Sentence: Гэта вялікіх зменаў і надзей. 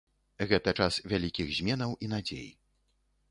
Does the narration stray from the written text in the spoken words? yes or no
yes